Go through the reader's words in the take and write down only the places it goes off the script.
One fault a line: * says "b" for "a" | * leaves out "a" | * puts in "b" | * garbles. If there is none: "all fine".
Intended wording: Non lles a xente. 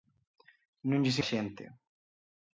all fine